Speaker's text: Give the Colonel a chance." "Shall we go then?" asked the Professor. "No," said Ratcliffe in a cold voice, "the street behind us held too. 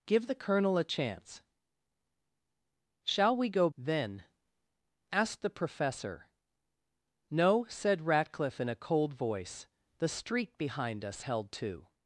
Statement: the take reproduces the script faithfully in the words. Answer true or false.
true